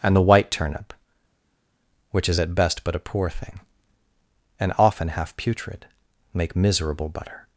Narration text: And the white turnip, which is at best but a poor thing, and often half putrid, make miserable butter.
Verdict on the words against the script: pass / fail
pass